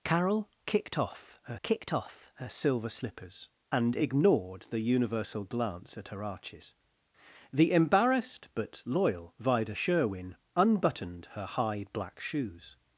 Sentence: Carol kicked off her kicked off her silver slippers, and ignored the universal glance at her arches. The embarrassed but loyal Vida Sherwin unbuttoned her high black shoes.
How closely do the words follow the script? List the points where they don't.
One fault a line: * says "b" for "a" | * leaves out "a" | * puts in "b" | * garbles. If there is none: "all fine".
all fine